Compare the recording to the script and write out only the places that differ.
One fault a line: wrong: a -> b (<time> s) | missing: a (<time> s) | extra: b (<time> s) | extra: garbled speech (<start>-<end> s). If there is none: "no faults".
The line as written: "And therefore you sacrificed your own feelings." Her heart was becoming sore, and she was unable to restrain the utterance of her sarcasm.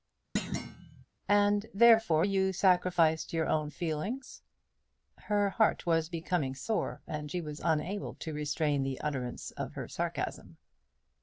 no faults